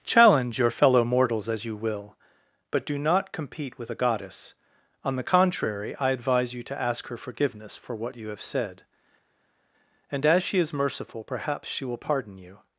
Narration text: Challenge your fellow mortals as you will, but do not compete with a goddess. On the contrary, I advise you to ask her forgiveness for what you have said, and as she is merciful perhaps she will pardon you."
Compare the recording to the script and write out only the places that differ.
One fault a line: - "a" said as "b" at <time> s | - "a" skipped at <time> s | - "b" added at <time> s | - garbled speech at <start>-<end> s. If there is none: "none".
none